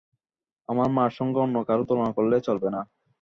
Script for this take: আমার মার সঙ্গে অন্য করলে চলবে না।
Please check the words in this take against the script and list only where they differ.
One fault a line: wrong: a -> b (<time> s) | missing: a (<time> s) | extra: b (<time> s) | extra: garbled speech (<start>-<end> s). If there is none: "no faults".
extra: কারো তুলনা (1.7 s)